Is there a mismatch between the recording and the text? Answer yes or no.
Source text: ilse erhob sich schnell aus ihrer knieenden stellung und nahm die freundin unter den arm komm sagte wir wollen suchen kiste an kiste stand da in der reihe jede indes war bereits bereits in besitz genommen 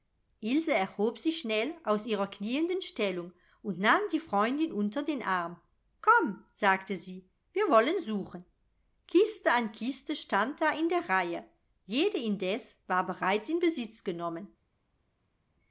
yes